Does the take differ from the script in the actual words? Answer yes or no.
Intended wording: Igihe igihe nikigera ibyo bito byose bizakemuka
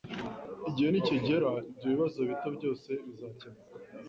yes